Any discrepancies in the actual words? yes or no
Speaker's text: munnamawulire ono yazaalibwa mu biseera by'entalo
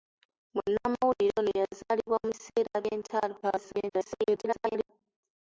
yes